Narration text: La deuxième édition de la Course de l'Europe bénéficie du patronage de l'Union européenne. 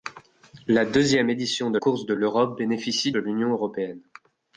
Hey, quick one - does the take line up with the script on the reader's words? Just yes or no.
no